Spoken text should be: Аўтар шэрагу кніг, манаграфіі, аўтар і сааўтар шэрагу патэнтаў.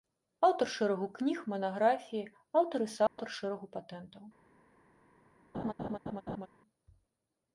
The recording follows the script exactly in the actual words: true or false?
true